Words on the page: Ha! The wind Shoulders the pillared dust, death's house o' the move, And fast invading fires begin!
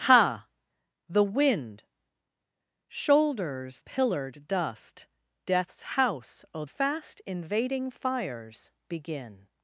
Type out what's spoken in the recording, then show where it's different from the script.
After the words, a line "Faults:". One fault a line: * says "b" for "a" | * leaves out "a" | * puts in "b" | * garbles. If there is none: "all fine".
Ha! The wind Shoulders pillared dust, death's house o' fast invading fires begin!
Faults:
* leaves out "the"
* leaves out "the move And"